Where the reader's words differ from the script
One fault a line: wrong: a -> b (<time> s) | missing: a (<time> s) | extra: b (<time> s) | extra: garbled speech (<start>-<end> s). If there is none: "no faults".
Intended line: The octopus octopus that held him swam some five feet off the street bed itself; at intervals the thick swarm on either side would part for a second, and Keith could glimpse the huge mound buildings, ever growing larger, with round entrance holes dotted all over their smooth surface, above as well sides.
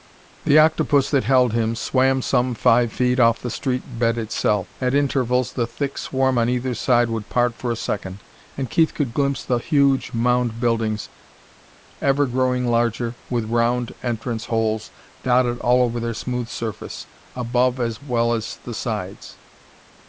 missing: octopus (1.1 s)
extra: as the (18.3 s)